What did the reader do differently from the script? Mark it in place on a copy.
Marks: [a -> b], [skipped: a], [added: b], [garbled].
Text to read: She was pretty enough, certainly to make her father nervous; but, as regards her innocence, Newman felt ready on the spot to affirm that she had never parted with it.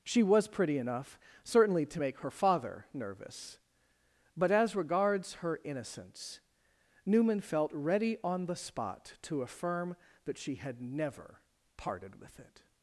She was pretty enough, certainly to make her father nervous; but, as regards her innocence, Newman felt ready on the spot to affirm that she had never parted with it.